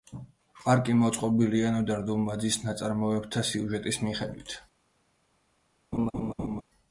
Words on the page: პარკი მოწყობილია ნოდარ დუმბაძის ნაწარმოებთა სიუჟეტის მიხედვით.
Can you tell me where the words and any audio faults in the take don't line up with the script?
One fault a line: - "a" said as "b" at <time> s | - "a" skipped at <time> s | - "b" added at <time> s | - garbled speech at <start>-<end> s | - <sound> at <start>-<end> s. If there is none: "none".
- laugh at 5.9-6.6 s